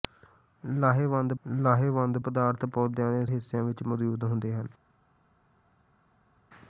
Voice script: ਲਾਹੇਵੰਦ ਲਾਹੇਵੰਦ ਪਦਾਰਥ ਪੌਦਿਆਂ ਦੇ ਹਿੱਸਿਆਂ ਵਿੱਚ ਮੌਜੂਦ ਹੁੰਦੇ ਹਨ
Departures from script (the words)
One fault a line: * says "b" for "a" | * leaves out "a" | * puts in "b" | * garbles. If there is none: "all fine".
all fine